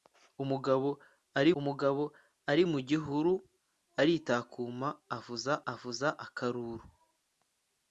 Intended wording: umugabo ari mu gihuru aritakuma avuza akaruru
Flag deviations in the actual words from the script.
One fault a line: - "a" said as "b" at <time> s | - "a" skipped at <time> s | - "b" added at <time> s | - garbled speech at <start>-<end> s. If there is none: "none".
- "umugabo ari" added at 1.6 s
- "avuza" added at 5.7 s